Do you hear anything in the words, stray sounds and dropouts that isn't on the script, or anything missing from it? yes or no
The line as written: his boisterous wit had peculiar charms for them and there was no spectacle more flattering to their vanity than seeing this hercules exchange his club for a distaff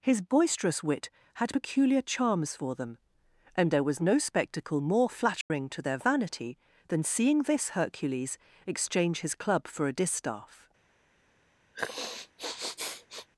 yes